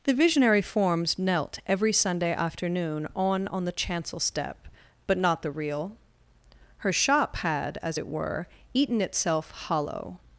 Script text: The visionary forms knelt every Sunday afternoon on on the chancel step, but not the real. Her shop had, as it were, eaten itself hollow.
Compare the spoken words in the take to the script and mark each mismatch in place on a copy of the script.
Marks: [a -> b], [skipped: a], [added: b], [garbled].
The visionary forms knelt every Sunday afternoon on on the chancel step, but not the real. Her shop had, as it were, eaten itself hollow.